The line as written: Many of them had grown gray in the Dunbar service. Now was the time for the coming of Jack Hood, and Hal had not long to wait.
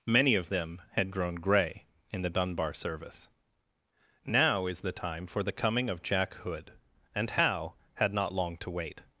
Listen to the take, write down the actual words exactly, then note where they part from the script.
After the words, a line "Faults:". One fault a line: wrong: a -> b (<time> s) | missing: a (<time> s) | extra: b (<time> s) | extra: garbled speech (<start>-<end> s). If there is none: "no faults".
Many of them had grown gray in the Dunbar service. Now is the time for the coming of Jack Hood, and Hal had not long to wait.
Faults:
wrong: was -> is (4.7 s)